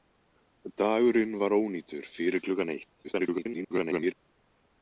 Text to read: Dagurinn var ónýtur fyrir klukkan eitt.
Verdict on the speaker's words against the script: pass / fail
fail